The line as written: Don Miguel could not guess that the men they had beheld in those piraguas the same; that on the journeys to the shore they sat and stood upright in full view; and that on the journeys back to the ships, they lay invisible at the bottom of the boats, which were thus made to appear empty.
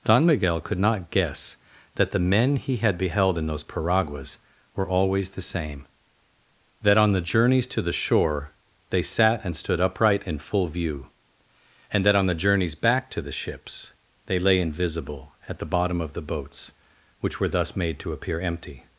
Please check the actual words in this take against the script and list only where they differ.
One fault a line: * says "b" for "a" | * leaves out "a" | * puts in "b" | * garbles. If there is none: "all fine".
* says "he" for "they"
* puts in "were always"